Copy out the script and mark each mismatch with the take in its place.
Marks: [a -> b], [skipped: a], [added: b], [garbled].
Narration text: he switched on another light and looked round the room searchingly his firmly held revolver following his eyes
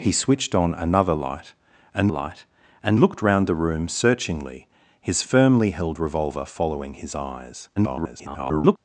he switched on another light and [added: light and] looked round the room searchingly his firmly held revolver following his eyes [garbled]